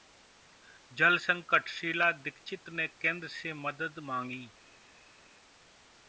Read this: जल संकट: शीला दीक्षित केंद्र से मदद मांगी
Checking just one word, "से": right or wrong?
right